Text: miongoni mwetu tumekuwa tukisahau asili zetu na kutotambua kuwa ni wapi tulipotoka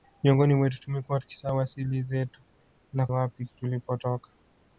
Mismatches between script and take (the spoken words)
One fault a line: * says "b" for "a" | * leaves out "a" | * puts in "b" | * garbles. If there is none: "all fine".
* leaves out "kutotambua kuwa ni"